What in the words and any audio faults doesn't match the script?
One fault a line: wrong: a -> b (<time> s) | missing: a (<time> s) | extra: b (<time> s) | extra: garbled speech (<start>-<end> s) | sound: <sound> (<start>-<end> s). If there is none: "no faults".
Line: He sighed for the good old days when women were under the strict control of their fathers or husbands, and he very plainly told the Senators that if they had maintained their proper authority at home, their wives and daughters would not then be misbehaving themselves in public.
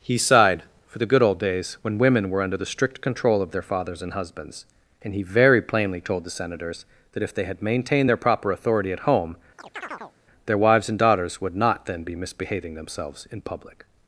wrong: or -> and (4.0 s)
sound: chirp (9.6-10.1 s)